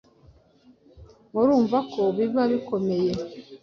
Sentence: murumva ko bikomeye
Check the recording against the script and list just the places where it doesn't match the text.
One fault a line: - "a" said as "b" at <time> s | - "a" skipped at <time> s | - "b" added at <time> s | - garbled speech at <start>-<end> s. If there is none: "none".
- "biba" added at 2.1 s